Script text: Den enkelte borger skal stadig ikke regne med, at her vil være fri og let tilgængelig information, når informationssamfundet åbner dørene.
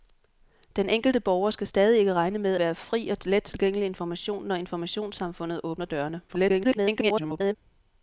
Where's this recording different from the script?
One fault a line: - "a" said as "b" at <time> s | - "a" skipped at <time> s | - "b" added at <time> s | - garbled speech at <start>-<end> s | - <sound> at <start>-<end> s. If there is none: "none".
- "at her vil" skipped at 2.6 s
- garbled speech at 6.3-7.6 s